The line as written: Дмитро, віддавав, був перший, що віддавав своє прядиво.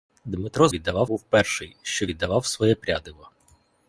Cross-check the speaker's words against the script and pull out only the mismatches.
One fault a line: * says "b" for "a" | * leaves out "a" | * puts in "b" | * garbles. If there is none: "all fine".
all fine